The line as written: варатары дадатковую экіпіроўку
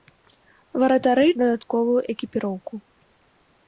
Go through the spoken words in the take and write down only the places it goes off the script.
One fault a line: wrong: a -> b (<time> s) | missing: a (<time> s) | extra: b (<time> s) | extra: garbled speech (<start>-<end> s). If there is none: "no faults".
no faults